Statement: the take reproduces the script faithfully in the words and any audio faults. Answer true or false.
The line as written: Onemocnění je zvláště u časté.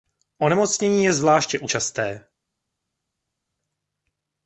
true